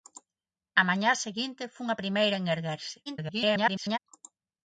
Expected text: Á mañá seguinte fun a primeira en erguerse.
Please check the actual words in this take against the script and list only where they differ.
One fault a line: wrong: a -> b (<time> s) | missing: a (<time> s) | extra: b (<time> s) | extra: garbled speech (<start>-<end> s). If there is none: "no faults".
extra: garbled speech (3.1-4.0 s)